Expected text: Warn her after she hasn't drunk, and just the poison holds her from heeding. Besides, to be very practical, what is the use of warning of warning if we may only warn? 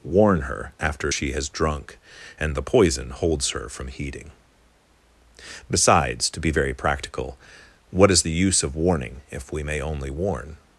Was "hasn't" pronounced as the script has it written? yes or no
no